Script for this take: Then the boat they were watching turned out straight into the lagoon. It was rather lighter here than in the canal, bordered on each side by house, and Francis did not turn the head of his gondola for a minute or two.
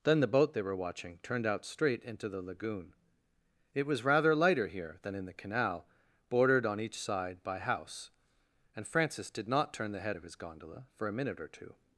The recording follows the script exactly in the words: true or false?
true